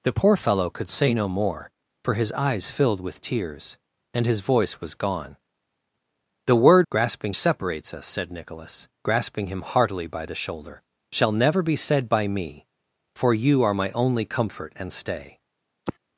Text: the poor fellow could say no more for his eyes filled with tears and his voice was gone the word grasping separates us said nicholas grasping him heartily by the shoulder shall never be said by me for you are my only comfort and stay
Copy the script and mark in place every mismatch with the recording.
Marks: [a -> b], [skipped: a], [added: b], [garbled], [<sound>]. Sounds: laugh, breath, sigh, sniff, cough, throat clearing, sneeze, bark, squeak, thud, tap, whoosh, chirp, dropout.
the poor fellow could say no more for his eyes filled with tears and his voice was gone the word grasping separates us said nicholas grasping him heartily by the shoulder shall never be said by me for you are my only comfort and stay [sigh]